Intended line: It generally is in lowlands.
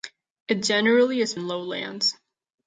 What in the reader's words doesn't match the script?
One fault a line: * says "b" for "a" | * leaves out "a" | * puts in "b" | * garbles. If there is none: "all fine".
all fine